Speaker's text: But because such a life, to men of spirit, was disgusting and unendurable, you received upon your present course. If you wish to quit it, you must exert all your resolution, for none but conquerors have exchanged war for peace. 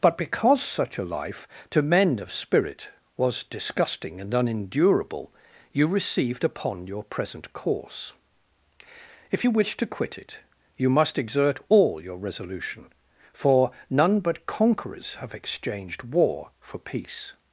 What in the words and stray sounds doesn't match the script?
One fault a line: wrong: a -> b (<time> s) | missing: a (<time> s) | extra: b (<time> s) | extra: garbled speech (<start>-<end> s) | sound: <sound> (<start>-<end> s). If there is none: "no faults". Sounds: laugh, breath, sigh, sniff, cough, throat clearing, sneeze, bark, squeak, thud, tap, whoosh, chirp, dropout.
no faults